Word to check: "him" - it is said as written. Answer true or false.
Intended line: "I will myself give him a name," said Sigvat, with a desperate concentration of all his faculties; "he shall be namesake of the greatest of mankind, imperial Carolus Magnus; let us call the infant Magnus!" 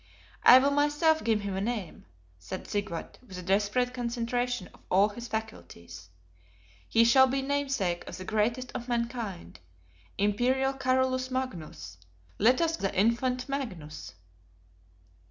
true